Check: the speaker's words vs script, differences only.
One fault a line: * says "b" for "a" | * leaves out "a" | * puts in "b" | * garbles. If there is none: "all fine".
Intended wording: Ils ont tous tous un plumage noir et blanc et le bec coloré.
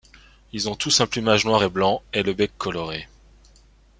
* leaves out "tous"